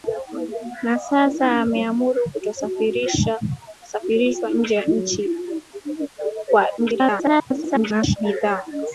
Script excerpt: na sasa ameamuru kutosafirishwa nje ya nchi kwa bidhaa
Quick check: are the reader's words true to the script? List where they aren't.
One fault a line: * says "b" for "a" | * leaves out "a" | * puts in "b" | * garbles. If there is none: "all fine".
* garbles